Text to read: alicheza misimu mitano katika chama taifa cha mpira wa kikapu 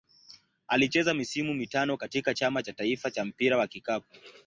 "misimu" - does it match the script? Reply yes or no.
yes